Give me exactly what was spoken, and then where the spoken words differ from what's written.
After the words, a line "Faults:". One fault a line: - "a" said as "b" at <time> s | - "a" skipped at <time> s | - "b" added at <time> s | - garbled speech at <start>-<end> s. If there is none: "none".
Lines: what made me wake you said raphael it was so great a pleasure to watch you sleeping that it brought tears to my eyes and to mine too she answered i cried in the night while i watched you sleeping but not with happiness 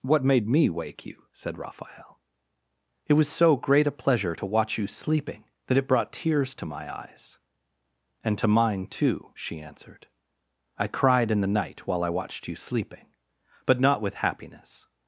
what made me wake you said raphael it was so great a pleasure to watch you sleeping that it brought tears to my eyes and to mine too she answered i cried in the night while i watched you sleeping but not with happiness
Faults:
none